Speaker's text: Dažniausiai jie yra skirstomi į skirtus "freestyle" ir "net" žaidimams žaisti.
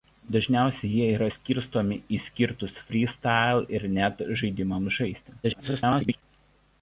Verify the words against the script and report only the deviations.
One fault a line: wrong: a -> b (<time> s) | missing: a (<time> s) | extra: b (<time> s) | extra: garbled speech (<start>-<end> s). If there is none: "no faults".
extra: garbled speech (5.4-6.2 s)